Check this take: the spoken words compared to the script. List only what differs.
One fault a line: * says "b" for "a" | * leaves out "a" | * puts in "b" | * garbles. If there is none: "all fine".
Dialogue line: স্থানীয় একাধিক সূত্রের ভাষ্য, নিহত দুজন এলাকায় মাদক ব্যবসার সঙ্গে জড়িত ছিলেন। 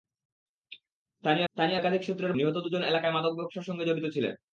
* puts in "স্থানীয়"
* leaves out "ভাষ্য"